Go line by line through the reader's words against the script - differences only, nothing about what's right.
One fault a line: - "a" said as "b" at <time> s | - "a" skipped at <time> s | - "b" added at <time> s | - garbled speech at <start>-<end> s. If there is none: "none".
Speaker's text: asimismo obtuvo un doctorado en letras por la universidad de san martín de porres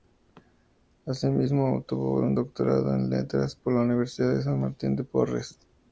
none